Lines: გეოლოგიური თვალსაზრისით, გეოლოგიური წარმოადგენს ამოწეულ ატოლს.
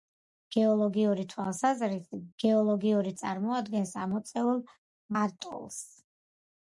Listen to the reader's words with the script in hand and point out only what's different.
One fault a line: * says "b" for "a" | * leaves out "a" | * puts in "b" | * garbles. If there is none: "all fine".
all fine